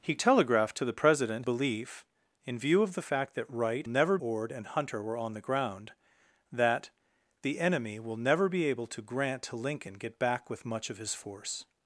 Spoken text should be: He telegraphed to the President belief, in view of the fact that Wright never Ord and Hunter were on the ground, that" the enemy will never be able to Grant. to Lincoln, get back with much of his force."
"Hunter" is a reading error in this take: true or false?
false